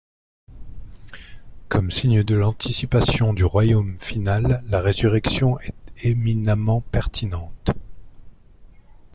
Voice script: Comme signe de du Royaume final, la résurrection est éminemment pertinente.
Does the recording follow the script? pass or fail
fail